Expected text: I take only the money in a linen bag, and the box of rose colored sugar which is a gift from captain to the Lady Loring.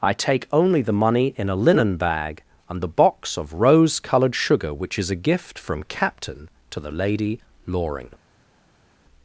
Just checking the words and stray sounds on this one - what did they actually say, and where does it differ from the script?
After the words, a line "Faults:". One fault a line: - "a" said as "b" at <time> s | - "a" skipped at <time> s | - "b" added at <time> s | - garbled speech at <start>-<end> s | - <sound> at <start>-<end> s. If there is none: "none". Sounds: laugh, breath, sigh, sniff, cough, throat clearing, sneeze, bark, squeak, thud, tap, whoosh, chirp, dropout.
I take only the money in a linen bag, and the box of rose colored sugar which is a gift from captain to the Lady Loring.
Faults:
none